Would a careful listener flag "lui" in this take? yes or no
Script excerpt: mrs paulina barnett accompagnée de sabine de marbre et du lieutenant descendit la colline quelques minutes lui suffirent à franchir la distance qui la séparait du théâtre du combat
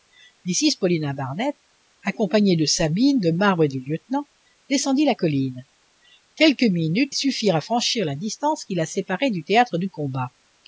yes